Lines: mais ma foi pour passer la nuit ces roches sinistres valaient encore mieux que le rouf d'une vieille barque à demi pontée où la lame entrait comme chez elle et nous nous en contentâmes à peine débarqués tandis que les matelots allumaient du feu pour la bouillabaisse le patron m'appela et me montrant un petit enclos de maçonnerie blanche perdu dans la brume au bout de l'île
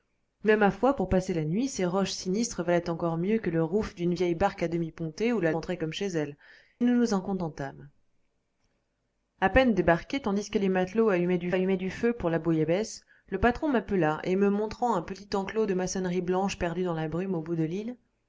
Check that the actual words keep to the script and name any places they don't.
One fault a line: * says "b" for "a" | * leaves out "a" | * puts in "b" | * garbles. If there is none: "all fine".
* leaves out "lame"
* leaves out "et"
* puts in "allumaient du"